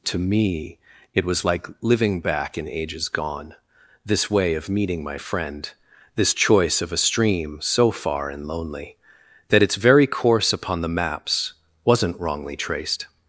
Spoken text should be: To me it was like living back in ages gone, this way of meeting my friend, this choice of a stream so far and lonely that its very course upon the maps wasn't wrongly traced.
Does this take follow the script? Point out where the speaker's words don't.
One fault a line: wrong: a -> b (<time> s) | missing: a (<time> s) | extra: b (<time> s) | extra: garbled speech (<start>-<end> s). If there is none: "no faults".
no faults